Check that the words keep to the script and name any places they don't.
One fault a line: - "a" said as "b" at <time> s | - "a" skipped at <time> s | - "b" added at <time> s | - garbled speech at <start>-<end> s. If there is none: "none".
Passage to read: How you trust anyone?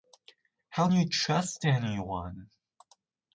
none